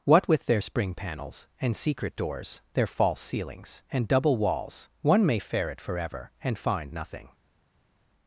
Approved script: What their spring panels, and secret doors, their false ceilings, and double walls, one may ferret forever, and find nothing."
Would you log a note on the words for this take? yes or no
yes